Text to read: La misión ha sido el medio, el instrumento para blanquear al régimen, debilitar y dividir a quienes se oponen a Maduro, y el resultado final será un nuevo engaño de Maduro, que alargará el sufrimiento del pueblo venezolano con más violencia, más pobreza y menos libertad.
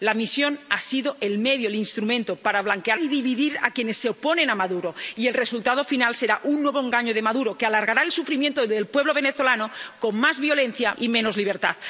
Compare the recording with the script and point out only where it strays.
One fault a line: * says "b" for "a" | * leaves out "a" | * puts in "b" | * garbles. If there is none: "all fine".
* leaves out "al régimen debilitar"
* leaves out "más pobreza"